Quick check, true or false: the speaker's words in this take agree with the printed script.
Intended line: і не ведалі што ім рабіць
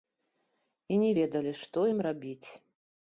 true